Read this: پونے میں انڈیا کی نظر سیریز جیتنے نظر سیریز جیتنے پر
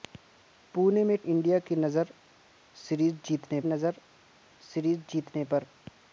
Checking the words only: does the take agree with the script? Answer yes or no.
yes